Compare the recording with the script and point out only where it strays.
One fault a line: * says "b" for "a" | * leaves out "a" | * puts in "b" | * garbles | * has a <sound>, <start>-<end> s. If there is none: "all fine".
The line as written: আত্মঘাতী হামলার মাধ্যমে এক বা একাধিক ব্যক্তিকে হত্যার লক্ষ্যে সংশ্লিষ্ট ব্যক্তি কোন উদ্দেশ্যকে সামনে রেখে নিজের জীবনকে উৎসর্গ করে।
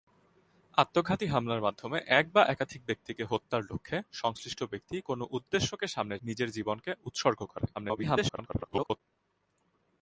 * leaves out "রেখে"
* garbles